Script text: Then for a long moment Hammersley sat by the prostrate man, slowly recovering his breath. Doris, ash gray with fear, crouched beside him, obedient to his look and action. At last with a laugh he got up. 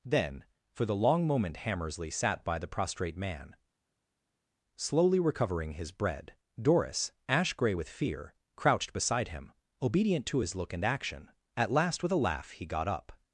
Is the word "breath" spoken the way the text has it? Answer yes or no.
no